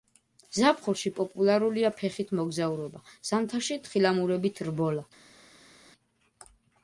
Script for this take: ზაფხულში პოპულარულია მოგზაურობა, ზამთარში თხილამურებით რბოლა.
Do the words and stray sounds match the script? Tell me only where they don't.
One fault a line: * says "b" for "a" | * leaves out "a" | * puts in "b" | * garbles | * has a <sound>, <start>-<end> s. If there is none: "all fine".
* puts in "ფეხით"